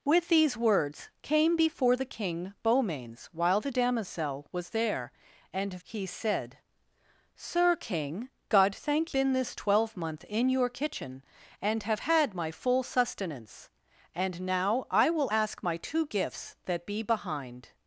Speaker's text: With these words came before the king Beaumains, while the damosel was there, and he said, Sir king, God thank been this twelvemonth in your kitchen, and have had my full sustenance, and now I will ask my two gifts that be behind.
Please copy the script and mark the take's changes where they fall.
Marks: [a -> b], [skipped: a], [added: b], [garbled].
With these words came before the king Beaumains, while the damosel was there, and he said, Sir king, God thank been this twelvemonth in your kitchen, and have had my full sustenance, and now I will ask my two gifts that be behind.